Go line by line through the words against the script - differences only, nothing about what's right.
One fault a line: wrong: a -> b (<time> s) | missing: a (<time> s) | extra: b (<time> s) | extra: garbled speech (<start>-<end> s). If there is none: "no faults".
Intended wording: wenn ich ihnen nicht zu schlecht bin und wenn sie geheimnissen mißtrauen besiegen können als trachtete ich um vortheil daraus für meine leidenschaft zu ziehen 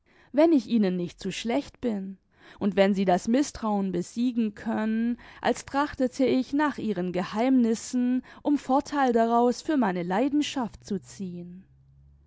wrong: geheimnissen -> das (3.0 s)
extra: nach ihren geheimnissen (6.5 s)